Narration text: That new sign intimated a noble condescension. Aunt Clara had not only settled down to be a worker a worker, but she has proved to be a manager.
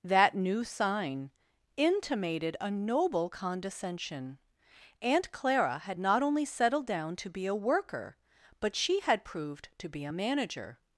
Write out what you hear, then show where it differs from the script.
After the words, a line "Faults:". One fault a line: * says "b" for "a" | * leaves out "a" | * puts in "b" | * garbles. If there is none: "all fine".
That new sign intimated a noble condescension. Aunt Clara had not only settled down to be a worker, but she had proved to be a manager.
Faults:
* leaves out "a worker"
* says "had" for "has"